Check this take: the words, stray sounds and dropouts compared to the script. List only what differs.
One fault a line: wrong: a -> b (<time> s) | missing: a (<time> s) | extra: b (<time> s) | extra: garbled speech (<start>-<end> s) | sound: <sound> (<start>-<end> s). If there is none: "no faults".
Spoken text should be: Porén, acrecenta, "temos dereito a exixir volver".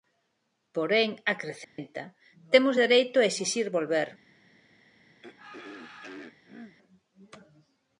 sound: dropout (1.6-1.8 s)
sound: throat clearing (5.2-6.8 s)